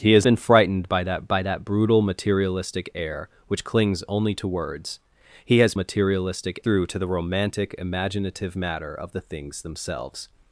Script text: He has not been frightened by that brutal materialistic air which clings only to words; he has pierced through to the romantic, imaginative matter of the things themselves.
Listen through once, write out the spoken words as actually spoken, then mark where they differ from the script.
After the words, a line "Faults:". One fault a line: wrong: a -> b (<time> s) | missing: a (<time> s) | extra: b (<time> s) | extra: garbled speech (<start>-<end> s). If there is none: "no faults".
He has been frightened by that by that brutal materialistic air which clings only to words; he has materialistic through to the romantic, imaginative matter of the things themselves.
Faults:
missing: not (0.2 s)
extra: by that (1.3 s)
wrong: pierced -> materialistic (5.7 s)